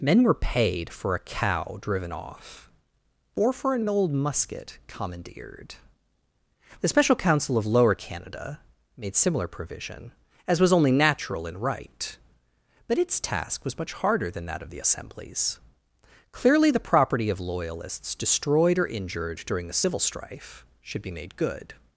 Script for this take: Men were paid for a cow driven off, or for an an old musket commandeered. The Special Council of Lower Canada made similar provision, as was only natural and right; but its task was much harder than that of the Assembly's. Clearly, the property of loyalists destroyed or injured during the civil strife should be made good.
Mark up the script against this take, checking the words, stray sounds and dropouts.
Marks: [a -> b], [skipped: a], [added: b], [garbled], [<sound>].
Men were paid for a cow driven off, or for an an old musket commandeered. The Special Council of Lower Canada made similar provision, as was only natural and right; but its task was much harder than that of the Assembly's. Clearly, the property of loyalists destroyed or injured during the civil strife should be made good.